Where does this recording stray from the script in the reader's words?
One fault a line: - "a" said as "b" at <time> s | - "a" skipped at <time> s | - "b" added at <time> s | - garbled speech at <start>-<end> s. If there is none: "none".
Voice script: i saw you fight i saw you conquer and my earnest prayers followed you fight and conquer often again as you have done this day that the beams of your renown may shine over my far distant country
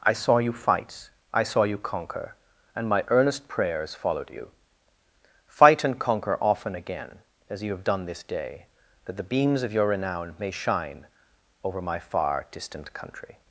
none